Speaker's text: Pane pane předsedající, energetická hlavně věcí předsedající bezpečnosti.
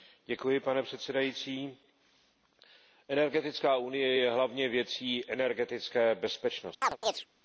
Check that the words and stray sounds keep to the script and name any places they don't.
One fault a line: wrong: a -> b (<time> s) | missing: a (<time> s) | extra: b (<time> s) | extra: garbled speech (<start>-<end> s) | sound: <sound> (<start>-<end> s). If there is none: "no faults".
missing: pane (0.8 s)
extra: unie je (3.8 s)
wrong: předsedající -> energetické (5.3 s)
sound: chirp (6.8-7.3 s)